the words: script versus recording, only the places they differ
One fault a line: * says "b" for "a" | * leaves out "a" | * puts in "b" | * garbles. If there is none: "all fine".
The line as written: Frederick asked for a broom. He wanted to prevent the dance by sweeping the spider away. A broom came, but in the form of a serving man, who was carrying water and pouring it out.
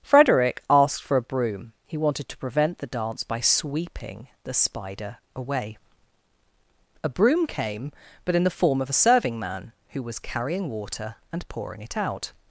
all fine